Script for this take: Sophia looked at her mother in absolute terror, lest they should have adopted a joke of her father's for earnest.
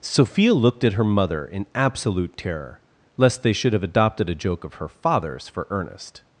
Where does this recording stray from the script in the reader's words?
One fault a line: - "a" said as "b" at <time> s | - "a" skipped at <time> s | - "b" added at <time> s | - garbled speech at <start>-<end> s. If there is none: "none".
none